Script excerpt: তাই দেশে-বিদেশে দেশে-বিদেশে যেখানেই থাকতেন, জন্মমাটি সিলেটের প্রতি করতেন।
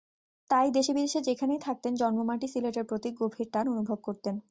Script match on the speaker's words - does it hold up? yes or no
no